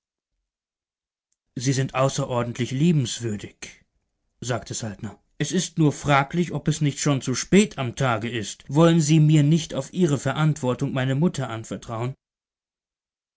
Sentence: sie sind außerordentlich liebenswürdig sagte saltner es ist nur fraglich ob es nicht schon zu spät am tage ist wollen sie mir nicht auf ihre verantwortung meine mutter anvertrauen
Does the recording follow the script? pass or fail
pass